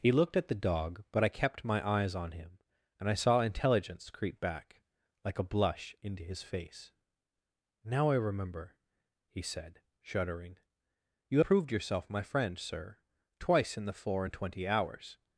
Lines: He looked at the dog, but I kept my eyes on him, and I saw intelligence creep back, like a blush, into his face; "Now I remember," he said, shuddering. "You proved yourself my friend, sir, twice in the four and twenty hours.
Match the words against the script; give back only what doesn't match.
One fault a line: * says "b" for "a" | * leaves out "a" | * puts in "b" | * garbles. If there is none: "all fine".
all fine